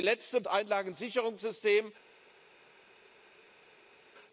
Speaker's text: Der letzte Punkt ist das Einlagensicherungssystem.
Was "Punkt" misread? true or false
true